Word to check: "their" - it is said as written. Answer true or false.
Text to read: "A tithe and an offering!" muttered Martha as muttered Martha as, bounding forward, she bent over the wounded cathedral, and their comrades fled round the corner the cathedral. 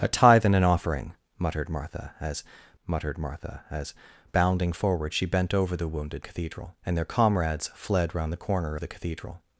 true